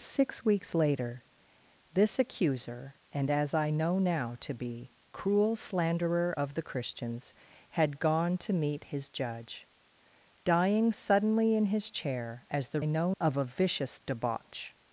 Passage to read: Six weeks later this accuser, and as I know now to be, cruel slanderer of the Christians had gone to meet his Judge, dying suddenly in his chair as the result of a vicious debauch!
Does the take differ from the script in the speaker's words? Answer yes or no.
yes